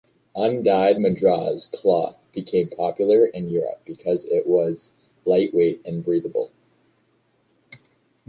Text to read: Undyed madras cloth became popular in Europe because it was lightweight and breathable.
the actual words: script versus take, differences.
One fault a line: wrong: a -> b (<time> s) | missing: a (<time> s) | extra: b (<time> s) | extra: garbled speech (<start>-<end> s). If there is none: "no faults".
no faults